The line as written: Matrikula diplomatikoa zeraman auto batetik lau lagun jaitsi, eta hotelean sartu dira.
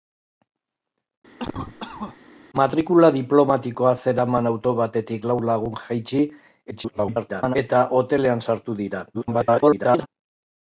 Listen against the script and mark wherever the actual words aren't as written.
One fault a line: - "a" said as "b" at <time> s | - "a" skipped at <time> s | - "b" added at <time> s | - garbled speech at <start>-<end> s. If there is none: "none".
- garbled speech at 6.7-7.6 s
- garbled speech at 9.1-10.1 s